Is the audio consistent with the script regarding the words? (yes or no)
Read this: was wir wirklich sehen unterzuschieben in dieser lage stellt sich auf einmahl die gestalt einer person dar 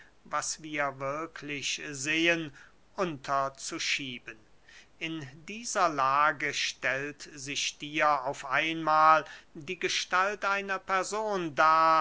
no